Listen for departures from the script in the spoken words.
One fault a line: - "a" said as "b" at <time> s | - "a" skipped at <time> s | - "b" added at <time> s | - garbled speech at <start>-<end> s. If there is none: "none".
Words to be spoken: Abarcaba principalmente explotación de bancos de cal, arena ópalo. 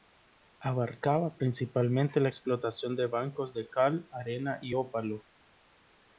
- "la" added at 2.2 s
- "y" added at 4.6 s